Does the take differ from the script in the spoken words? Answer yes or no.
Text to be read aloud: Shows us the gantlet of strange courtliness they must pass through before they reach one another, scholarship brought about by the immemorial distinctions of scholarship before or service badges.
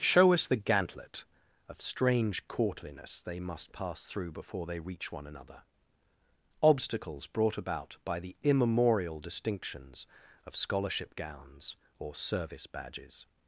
yes